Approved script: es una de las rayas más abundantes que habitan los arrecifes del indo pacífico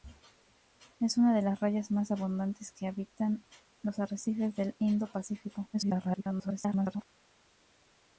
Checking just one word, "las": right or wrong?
right